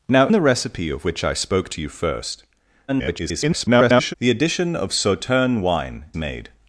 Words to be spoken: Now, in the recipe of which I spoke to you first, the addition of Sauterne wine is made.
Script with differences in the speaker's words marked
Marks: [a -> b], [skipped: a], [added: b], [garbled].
Now, [skipped: in] the recipe of which I spoke to you first, [garbled] the addition of Sauterne wine [skipped: is] made.